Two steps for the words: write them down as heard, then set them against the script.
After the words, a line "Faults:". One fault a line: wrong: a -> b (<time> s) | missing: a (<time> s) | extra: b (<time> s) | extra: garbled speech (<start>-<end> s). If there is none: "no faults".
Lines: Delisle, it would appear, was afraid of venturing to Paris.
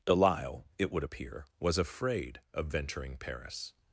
Delisle, it would appear, was afraid of venturing Paris.
Faults:
missing: to (3.2 s)